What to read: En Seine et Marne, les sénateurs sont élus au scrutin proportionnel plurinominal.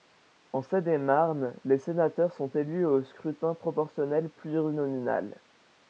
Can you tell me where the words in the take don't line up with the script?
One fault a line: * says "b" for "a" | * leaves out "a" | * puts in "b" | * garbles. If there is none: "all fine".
all fine